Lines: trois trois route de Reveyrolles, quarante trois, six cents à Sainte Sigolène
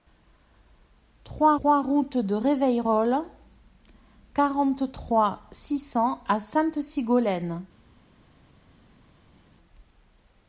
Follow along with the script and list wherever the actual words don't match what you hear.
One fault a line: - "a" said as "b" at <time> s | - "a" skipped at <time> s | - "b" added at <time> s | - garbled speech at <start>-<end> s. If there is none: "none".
none